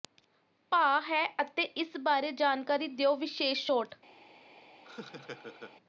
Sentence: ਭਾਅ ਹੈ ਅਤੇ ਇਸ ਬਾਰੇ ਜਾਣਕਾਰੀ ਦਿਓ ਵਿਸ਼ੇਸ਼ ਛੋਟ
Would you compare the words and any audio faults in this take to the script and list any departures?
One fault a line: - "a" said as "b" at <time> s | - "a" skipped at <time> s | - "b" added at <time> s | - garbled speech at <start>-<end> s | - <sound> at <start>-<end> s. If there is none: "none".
- laugh at 4.8-5.8 s